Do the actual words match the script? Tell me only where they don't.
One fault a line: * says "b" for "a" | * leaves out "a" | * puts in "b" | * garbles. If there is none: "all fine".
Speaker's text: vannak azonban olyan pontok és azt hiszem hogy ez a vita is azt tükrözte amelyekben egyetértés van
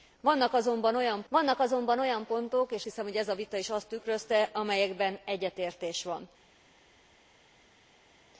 * puts in "vannak azonban olyan"
* leaves out "azt"